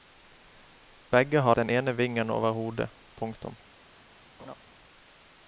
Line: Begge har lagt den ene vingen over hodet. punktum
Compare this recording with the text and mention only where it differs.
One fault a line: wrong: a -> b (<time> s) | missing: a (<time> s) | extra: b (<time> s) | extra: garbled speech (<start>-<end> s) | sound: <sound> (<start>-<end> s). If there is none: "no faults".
missing: lagt (1.6 s)
sound: laugh (4.4-4.5 s)